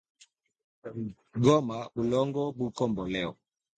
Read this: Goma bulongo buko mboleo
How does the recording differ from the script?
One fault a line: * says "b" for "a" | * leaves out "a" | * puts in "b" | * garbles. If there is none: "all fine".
all fine